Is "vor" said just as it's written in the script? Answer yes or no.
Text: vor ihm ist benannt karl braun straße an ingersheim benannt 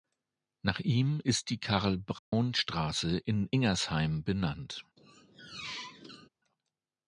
no